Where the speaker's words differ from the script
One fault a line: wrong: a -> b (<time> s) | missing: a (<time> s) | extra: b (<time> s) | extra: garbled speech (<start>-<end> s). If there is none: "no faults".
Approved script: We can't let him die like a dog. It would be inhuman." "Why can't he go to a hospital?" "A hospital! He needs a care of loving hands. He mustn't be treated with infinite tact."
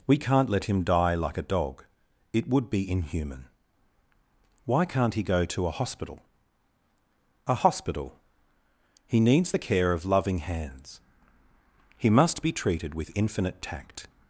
wrong: a -> the (9.5 s)
wrong: mustn't -> must (12.1 s)